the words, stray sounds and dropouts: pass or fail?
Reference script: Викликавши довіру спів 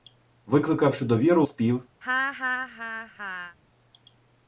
fail